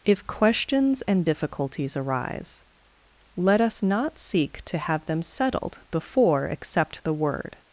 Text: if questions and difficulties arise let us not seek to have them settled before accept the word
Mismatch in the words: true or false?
false